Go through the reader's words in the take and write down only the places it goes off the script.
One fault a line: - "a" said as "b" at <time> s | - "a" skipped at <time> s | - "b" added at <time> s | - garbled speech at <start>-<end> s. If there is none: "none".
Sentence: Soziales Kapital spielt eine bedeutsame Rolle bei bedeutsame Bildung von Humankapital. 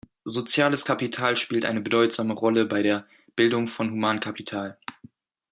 - "bedeutsame" said as "der" at 2.8 s